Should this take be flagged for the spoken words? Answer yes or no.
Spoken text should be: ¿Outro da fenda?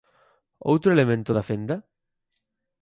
yes